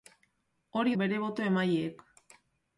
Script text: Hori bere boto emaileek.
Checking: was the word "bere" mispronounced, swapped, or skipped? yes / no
no